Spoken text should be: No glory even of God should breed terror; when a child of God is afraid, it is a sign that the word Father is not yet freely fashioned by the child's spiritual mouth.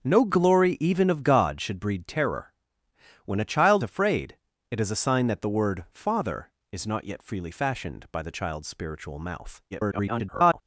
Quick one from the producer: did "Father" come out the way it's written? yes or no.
yes